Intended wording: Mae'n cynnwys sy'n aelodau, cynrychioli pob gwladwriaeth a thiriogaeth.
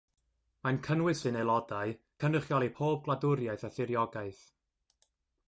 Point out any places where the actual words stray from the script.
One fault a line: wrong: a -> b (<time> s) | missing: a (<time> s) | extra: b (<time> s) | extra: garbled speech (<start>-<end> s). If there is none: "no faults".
no faults